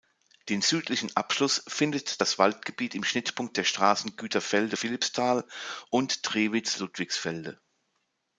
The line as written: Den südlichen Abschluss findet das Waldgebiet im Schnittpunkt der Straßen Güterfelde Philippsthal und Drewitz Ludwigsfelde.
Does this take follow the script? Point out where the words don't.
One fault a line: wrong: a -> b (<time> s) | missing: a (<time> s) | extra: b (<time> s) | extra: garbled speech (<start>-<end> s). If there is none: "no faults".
no faults